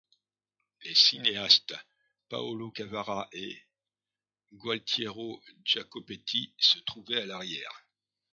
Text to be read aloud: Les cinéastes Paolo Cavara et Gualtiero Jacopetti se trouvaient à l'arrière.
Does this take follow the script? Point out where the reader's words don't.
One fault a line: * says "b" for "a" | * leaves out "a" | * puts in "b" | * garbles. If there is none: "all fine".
all fine